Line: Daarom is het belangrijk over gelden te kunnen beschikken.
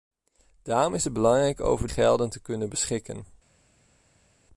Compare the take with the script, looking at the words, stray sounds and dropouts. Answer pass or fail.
pass